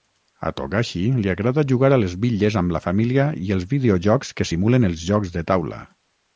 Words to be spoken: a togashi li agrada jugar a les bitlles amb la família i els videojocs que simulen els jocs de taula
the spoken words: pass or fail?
pass